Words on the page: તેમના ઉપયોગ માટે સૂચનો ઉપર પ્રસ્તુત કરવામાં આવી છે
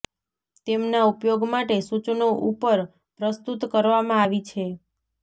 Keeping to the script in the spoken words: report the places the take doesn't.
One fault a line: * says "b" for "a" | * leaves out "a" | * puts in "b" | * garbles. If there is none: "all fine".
all fine